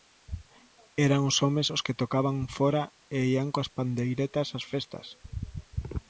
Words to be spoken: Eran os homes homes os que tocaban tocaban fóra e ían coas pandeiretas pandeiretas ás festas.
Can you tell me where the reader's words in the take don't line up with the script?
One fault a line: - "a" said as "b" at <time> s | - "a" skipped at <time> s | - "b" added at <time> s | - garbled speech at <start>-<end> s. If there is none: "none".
- "homes" skipped at 1.7 s
- "tocaban" skipped at 2.4 s
- "pandeiretas" skipped at 4.5 s